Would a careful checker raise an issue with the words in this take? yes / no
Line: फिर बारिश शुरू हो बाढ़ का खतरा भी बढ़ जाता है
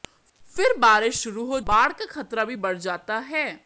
no